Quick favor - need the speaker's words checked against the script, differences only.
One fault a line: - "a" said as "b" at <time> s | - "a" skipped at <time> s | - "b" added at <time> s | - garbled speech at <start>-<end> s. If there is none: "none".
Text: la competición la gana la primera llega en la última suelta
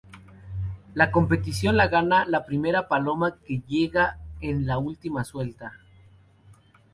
- "paloma que" added at 2.9 s